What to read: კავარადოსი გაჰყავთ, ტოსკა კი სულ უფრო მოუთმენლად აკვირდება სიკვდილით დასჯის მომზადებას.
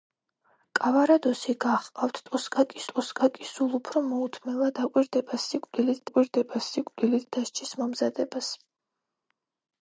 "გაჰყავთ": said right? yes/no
yes